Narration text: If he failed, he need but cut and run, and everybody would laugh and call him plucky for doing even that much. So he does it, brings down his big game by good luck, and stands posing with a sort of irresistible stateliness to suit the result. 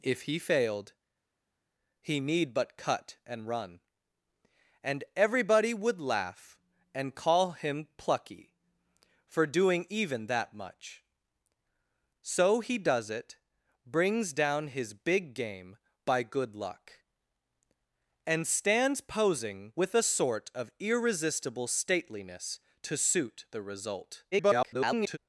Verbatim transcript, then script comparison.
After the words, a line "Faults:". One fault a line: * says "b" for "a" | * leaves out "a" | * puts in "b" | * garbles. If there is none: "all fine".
If he failed, he need but cut and run, and everybody would laugh and call him plucky for doing even that much. So he does it, brings down his big game by good luck, and stands posing with a sort of irresistible stateliness to suit the result. [garbled]
Faults:
* garbles